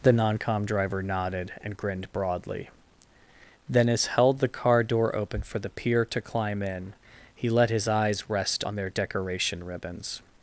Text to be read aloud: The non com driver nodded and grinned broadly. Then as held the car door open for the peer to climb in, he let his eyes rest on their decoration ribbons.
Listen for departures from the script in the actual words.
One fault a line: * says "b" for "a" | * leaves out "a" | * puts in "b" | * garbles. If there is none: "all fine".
all fine